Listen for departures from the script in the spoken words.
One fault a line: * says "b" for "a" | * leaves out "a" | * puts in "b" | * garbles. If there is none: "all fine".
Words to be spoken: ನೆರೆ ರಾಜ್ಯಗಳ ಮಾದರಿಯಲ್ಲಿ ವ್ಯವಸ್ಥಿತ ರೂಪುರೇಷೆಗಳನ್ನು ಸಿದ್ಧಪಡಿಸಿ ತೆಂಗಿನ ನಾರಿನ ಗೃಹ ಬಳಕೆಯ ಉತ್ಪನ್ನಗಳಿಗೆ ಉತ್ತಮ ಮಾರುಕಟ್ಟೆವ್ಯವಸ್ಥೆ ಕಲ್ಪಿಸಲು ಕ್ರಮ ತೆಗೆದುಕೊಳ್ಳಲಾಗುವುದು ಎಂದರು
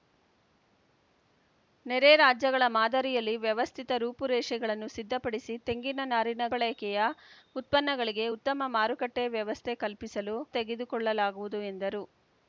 * leaves out "ಗೃಹ"
* leaves out "ಕ್ರಮ"